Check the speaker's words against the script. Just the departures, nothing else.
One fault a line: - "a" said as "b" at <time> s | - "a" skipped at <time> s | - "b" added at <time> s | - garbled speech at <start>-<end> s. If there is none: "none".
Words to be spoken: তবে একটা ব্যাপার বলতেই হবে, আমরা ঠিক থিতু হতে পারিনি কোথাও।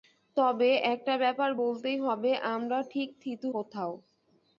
- "হতে পারিনি" skipped at 3.5 s